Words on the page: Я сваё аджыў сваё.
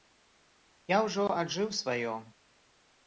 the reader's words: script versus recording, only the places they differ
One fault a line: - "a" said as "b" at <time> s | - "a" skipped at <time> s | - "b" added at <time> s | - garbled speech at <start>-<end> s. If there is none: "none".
- "сваё" said as "ўжо" at 1.1 s